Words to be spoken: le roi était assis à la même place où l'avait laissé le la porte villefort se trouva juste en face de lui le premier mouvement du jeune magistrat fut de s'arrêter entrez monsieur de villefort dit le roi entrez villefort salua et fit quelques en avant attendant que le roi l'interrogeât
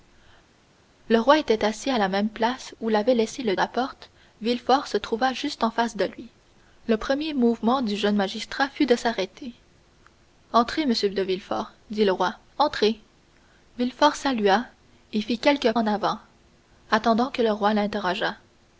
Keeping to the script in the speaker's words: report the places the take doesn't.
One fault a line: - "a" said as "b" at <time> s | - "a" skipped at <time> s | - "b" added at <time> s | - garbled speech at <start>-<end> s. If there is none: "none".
none